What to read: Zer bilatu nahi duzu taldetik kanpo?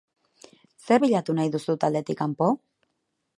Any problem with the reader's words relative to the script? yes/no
no